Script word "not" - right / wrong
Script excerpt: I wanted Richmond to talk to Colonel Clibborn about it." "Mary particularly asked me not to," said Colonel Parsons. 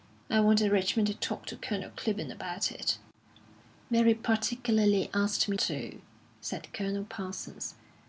wrong